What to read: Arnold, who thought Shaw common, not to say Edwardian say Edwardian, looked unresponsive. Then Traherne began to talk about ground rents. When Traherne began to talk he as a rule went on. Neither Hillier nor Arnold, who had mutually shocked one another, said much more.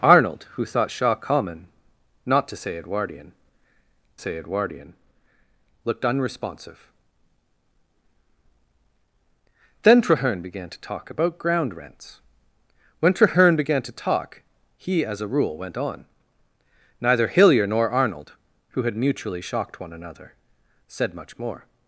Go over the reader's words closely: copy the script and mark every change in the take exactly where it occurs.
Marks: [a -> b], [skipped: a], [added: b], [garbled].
Arnold, who thought Shaw common, not to say Edwardian say Edwardian, looked unresponsive. Then Traherne began to talk about ground rents. When Traherne began to talk he as a rule went on. Neither Hillier nor Arnold, who had mutually shocked one another, said much more.